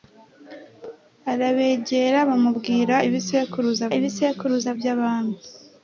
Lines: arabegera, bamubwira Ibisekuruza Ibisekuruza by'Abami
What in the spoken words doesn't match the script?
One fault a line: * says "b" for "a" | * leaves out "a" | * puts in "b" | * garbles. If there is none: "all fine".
all fine